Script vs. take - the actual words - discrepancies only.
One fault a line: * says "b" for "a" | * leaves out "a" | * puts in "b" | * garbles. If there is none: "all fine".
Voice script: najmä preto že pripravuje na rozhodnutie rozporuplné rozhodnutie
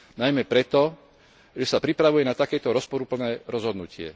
* puts in "sa"
* says "takéto" for "rozhodnutie"